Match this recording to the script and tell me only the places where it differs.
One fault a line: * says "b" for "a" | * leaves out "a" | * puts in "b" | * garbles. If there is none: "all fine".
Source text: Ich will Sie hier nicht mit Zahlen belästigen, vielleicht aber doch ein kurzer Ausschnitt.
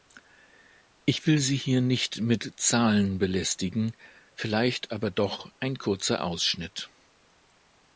all fine